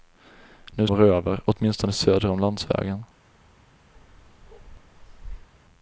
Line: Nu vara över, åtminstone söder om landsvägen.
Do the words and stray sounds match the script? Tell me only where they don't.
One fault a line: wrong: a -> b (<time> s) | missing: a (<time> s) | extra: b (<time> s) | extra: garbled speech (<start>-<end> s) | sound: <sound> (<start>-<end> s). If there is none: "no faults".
sound: bark (3.9-5.5 s)